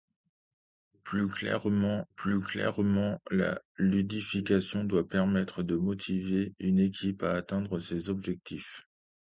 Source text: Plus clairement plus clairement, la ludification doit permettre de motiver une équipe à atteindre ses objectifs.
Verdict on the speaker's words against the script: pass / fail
pass